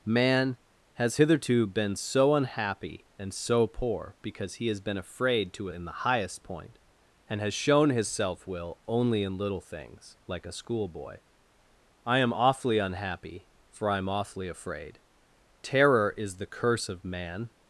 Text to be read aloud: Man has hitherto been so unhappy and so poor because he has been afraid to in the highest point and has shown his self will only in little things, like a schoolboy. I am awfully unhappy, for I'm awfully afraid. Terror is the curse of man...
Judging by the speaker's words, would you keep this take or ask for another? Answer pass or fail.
pass